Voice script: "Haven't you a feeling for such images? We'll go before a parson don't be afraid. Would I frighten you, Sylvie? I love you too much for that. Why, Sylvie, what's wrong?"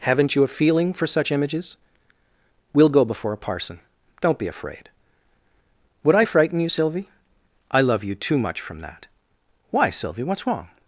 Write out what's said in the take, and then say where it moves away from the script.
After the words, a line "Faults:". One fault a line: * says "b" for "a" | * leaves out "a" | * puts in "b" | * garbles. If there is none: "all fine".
"Haven't you a feeling for such images? We'll go before a parson don't be afraid. Would I frighten you, Sylvie? I love you too much from that. Why, Sylvie, what's wrong?"
Faults:
* says "from" for "for"